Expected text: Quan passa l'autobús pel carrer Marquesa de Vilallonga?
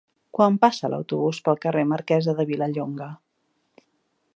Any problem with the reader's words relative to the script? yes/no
no